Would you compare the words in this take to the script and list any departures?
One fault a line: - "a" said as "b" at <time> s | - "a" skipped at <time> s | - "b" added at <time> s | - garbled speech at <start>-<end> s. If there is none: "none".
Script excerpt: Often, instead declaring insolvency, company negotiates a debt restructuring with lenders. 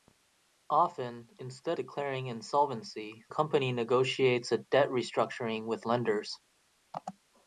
none